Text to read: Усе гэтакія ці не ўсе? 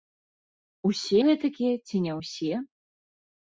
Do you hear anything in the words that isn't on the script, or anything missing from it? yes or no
no